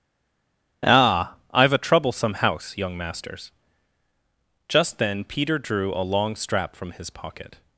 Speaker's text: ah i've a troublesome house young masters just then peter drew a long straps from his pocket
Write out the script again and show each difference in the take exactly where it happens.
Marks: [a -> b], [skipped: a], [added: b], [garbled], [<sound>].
ah i've a troublesome house young masters just then peter drew a long [straps -> strap] from his pocket